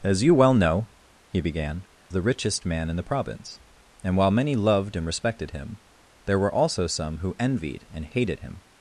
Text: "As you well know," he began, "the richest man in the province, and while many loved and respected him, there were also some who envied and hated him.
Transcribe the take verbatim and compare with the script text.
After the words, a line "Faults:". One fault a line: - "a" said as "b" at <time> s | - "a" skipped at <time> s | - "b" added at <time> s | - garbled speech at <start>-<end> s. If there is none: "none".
"As you well know," he began, "the richest man in the province, and while many loved and respected him, there were also some who envied and hated him.
Faults:
none